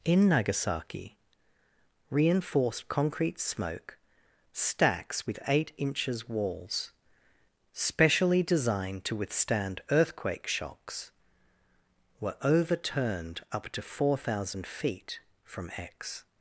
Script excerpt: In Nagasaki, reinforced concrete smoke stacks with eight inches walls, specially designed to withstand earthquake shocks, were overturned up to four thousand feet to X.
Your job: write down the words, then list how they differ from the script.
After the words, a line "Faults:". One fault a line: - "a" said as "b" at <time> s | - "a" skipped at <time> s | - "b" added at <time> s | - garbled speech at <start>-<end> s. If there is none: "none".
In Nagasaki, reinforced concrete smoke stacks with eight inches walls, specially designed to withstand earthquake shocks, were overturned up to four thousand feet from X.
Faults:
- "to" said as "from" at 15.4 s